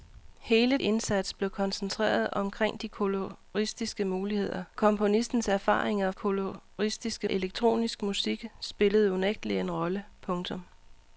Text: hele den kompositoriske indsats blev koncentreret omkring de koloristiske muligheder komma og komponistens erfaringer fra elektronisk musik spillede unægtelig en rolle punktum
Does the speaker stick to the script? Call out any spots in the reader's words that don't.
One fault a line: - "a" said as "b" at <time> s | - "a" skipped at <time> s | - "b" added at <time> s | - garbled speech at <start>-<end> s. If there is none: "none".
- "den kompositoriske" skipped at 0.8 s
- "komma og" skipped at 4.6 s
- "fra" said as "koloristiske" at 6.1 s